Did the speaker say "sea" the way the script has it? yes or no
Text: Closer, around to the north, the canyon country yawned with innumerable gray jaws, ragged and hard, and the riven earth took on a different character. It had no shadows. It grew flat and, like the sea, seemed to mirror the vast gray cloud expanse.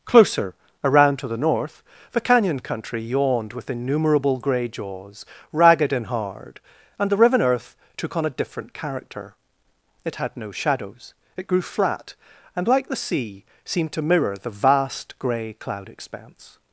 yes